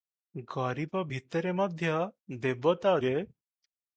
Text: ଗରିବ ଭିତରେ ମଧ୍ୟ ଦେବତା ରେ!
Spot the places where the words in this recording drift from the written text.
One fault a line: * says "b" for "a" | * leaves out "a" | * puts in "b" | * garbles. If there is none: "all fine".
all fine